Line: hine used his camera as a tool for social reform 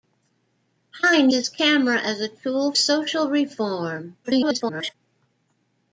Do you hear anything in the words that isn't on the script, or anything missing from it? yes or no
yes